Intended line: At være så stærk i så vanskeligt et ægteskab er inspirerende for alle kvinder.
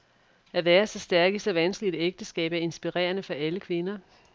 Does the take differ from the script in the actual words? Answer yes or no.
no